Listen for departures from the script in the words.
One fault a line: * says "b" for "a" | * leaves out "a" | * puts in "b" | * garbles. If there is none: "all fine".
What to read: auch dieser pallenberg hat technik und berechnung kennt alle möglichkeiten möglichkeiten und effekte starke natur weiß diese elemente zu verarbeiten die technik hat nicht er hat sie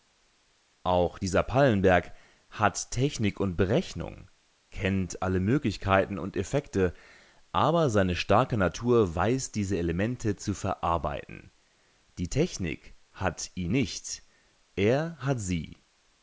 * leaves out "möglichkeiten"
* puts in "aber seine"
* puts in "ihn"